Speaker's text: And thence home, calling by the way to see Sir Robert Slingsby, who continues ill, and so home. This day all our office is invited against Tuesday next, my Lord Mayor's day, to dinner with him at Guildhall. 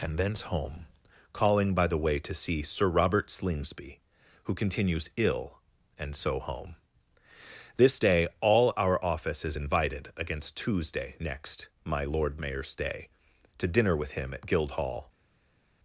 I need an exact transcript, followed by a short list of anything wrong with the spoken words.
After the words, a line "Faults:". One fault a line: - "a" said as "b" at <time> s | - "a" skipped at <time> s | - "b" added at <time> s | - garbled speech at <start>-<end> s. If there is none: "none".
And thence home, calling by the way to see Sir Robert Slingsby, who continues ill, and so home. This day all our office is invited against Tuesday next, my Lord Mayor's day, to dinner with him at Guildhall.
Faults:
none